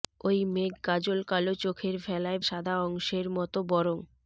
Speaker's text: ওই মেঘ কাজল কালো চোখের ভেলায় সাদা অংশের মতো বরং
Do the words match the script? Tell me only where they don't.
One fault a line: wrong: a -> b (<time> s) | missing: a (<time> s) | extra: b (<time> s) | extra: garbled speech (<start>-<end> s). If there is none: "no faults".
no faults